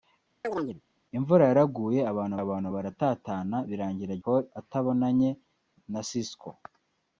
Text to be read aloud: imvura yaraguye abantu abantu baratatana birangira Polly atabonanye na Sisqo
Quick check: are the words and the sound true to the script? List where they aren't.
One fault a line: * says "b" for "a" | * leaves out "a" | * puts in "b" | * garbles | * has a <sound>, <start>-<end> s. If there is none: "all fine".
* has a chirp, 0.4-0.8 s